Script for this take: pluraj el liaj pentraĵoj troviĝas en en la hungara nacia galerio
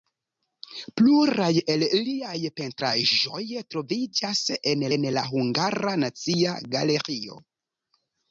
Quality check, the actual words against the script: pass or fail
pass